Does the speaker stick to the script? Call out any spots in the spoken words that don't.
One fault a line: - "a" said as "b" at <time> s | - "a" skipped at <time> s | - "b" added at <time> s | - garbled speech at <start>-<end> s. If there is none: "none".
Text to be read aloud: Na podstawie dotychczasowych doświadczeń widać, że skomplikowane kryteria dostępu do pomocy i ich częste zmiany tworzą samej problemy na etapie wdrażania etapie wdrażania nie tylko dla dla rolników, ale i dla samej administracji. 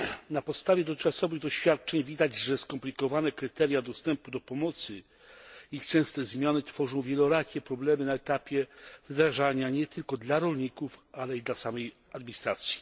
- "samej" said as "wielorakie" at 7.0 s
- "etapie wdrażania" skipped at 9.7 s
- "dla" skipped at 10.4 s